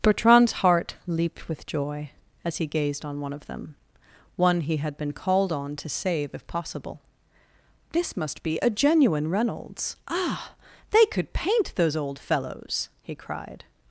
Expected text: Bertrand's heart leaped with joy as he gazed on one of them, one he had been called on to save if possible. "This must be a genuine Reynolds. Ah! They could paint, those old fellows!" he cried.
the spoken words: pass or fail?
pass